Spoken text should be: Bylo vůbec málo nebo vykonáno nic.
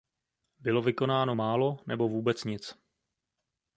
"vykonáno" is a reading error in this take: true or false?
true